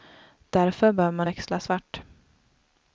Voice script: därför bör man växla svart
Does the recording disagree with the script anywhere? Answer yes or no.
no